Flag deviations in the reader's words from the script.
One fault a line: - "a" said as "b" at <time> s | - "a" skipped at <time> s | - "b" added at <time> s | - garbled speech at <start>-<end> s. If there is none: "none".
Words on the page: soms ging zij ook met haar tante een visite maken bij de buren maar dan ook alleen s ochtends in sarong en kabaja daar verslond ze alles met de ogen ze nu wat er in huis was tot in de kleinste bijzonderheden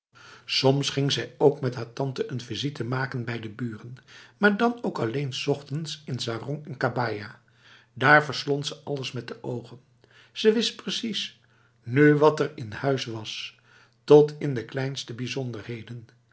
- "wist precies" added at 10.5 s